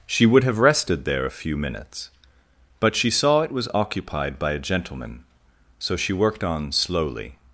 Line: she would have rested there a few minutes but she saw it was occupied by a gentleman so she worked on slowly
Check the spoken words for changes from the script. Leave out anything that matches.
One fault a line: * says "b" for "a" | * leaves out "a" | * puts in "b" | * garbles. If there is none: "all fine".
all fine